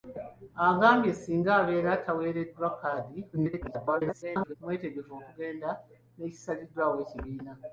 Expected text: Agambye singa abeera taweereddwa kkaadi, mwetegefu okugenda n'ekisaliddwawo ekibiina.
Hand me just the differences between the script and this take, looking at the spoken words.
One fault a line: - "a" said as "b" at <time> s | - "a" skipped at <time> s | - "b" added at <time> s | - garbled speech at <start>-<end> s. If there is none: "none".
- garbled speech at 3.3-4.6 s